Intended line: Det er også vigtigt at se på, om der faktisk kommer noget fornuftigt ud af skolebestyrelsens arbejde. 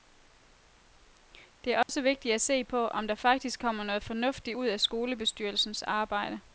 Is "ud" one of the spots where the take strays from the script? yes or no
no